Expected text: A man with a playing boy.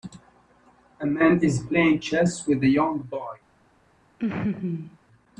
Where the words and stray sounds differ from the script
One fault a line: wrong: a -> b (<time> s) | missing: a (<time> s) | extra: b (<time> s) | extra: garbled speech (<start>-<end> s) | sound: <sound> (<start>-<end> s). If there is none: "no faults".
extra: is playing chess (1.4 s)
wrong: playing -> young (2.7 s)
sound: laugh (4.2-5.0 s)